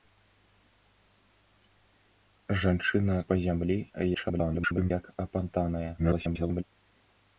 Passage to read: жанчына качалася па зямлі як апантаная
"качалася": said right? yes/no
no